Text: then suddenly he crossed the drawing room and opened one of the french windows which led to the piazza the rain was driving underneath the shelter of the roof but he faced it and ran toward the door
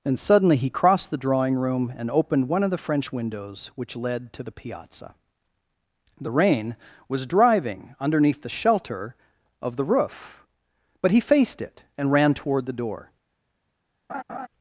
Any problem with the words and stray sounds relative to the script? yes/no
yes